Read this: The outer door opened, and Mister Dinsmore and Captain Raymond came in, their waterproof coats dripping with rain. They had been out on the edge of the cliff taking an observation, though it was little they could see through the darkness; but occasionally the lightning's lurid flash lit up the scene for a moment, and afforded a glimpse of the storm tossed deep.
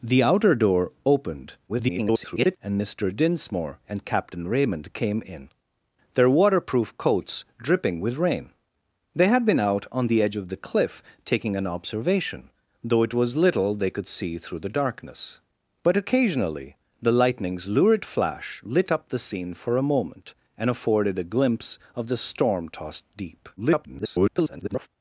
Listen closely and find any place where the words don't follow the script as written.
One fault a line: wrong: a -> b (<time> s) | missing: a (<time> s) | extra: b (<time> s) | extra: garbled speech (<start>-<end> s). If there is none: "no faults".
extra: garbled speech (1.7-2.6 s)
extra: garbled speech (23.6-24.9 s)